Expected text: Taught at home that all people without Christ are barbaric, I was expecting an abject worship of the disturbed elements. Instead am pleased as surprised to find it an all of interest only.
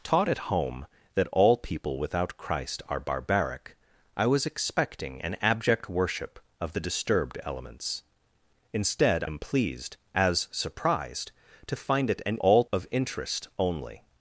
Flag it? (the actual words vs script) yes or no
no